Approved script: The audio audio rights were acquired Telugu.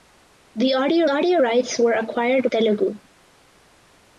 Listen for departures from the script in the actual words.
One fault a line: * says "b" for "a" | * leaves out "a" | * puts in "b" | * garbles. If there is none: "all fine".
all fine